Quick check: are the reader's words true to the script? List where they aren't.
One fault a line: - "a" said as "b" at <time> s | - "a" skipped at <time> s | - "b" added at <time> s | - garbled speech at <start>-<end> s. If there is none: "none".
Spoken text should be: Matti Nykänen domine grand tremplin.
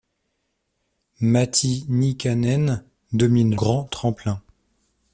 none